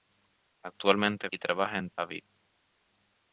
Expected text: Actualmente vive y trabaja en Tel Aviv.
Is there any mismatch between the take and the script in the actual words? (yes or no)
yes